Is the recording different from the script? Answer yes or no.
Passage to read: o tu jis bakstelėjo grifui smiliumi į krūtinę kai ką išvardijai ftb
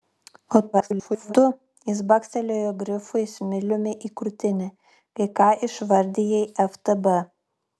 yes